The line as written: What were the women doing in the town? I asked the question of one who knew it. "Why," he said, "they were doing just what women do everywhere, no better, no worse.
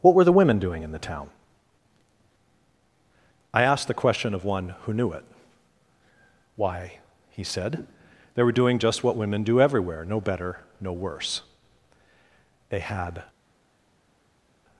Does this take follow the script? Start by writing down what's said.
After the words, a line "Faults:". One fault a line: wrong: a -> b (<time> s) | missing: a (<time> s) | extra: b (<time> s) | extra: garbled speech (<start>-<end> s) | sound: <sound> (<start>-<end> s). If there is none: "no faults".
What were the women doing in the town? I asked the question of one who knew it. "Why," he said, "they were doing just what women do everywhere, no better, no worse. They had
Faults:
extra: They had (12.7 s)